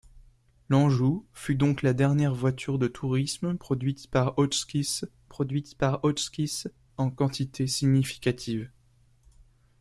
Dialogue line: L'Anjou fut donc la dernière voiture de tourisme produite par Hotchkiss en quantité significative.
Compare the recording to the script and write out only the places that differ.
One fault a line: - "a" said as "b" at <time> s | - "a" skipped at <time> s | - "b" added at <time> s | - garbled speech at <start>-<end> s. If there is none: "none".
- "produite par Hotchkiss" added at 5.2 s